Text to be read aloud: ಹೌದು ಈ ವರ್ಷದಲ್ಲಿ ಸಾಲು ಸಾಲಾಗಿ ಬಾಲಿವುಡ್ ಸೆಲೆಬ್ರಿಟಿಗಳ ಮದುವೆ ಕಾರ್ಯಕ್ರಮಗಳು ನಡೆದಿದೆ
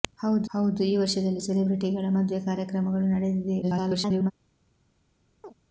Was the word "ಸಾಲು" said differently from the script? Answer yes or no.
yes